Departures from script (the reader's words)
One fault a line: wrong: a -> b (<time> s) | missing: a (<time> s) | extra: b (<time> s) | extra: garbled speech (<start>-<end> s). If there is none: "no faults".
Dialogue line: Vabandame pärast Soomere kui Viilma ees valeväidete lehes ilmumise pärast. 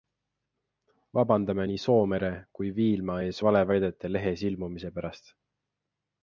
wrong: pärast -> nii (1.7 s)